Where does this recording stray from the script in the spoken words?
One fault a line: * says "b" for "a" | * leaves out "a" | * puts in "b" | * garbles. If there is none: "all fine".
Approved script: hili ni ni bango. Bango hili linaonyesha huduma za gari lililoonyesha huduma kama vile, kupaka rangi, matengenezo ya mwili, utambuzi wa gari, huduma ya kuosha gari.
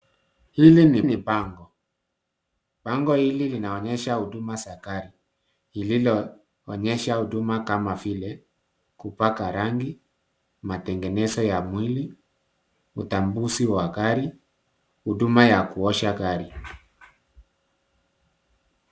all fine